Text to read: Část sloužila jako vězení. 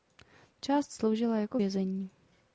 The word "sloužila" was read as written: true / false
true